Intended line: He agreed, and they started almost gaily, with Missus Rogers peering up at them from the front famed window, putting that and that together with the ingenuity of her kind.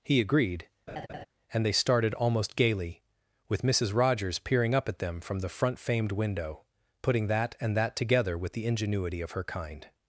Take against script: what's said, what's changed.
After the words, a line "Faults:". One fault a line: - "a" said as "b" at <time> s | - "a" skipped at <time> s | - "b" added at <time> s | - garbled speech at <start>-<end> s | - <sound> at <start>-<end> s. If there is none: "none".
He agreed, and they started almost gaily, with Missus Rogers peering up at them from the front famed window, putting that and that together with the ingenuity of her kind.
Faults:
- laugh at 0.9-1.3 s